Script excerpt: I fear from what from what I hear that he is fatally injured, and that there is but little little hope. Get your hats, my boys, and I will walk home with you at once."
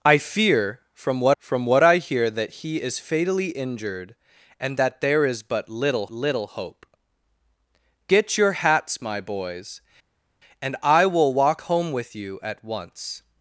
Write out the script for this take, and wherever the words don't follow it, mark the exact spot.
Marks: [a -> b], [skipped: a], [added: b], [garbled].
I fear from what from what I hear that he is fatally injured, and that there is but little little hope. Get your hats, my boys, and I will walk home with you at once."